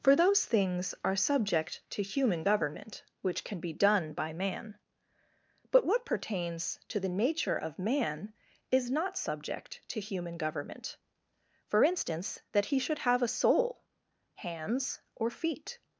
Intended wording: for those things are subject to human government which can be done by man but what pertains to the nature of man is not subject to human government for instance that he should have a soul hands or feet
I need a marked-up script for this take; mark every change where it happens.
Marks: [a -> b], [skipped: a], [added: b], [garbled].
for those things are subject to human government which can be done by man but what pertains to the nature of man is not subject to human government for instance that he should have a soul hands or feet